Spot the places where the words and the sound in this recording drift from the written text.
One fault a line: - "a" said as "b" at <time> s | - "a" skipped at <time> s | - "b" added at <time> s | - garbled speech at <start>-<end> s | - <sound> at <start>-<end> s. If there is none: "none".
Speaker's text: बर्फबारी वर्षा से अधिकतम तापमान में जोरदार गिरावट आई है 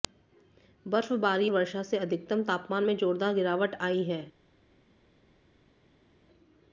none